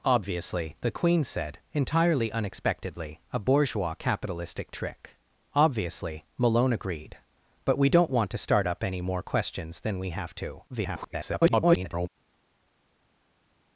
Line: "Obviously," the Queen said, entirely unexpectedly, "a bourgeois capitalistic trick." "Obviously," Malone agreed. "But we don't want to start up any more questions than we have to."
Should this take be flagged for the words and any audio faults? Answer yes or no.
yes